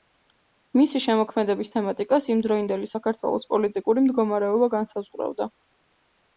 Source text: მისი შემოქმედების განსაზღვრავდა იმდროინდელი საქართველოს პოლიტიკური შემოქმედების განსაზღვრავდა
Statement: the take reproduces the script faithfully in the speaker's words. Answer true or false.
false